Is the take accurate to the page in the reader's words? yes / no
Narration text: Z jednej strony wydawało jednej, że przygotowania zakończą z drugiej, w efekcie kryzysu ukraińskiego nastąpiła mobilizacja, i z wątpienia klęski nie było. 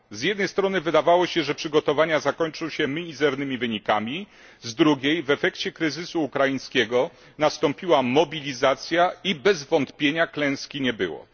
no